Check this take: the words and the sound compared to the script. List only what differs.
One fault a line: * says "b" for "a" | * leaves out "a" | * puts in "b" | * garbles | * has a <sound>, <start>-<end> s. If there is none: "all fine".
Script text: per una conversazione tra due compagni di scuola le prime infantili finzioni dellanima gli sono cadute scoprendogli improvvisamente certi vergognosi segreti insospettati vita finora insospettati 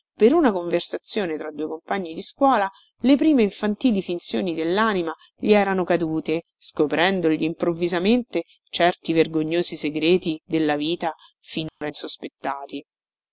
* says "erano" for "sono"
* says "della" for "insospettati"
* has a dropout, 11.7-11.8 s